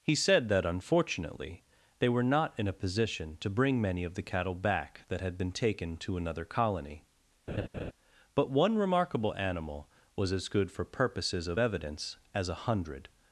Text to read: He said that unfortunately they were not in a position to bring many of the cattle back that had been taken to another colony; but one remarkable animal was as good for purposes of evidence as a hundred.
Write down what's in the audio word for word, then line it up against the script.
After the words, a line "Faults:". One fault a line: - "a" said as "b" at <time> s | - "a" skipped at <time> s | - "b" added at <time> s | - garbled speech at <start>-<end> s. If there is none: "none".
He said that unfortunately they were not in a position to bring many of the cattle back that had been taken to another colony; but one remarkable animal was as good for purposes of evidence as a hundred.
Faults:
none